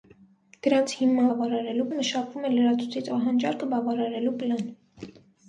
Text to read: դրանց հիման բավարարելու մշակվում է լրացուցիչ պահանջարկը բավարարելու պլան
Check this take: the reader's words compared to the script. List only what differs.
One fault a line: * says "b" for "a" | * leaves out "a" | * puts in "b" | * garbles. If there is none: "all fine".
all fine